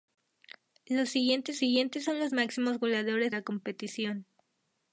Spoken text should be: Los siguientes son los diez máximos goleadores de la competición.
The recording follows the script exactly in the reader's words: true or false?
false